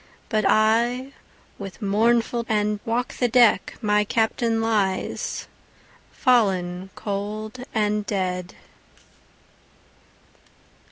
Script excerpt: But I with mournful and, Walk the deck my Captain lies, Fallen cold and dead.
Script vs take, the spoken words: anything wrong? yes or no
no